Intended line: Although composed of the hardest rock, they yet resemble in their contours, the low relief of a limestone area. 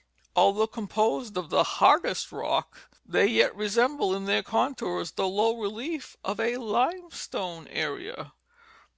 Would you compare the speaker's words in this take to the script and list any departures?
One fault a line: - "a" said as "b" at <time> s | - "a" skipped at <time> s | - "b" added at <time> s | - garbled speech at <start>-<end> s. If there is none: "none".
none